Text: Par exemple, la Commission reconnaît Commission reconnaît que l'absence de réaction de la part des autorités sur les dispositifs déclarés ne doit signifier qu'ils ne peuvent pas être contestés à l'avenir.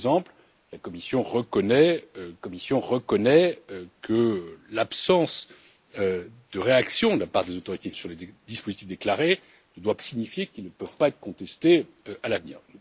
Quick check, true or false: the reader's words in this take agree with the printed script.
true